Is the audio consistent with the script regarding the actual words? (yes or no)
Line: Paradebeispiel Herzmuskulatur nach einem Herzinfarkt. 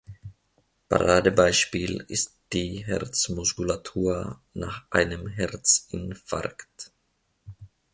no